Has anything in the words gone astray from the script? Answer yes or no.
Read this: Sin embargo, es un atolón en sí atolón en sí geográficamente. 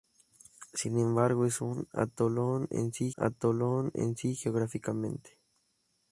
no